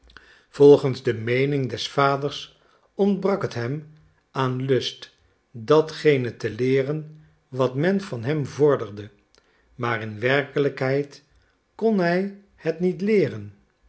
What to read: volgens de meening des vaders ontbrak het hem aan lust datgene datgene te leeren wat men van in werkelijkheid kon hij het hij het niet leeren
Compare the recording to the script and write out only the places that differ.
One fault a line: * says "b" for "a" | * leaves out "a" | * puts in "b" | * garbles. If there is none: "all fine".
* leaves out "datgene"
* puts in "hem vorderde maar"
* leaves out "hij het"